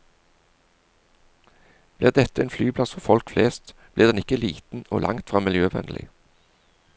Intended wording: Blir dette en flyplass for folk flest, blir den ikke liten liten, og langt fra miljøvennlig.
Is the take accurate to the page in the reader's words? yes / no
no